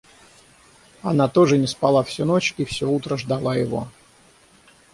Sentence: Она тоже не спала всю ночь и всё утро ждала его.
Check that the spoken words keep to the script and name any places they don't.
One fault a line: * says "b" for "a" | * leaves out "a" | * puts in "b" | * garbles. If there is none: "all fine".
all fine